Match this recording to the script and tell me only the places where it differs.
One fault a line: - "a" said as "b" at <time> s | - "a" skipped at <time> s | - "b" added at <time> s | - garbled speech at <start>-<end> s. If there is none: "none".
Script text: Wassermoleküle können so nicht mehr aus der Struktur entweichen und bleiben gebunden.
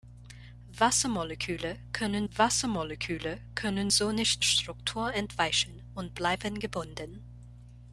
- "wassermoleküle können" added at 2.3 s
- "mehr aus der" skipped at 4.4 s